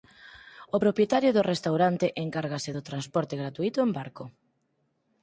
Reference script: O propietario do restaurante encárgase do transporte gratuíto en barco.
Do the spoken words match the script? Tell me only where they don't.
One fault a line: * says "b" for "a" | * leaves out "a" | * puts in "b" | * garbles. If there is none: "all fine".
all fine